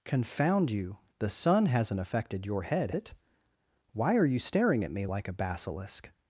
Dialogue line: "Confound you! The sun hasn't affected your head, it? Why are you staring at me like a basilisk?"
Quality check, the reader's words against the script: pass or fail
pass